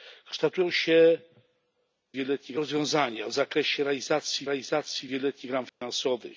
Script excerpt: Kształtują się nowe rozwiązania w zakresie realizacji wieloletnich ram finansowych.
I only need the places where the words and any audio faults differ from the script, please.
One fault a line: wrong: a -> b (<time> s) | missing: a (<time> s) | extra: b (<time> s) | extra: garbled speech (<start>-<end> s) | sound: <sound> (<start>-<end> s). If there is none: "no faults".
wrong: nowe -> wieloletnich (2.1 s)
extra: realizacji (4.5 s)
sound: dropout (5.7-5.8 s)